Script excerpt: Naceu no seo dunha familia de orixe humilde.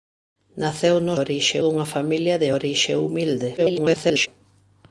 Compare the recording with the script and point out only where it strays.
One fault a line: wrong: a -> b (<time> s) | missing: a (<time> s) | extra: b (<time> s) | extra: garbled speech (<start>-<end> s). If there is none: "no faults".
wrong: seo -> orixe (1.2 s)
extra: garbled speech (3.6-4.3 s)